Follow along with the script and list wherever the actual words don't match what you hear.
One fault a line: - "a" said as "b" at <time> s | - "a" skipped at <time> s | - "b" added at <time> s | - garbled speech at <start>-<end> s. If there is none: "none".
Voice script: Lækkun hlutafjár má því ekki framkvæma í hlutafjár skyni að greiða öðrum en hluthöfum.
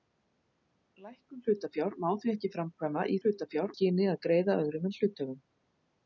none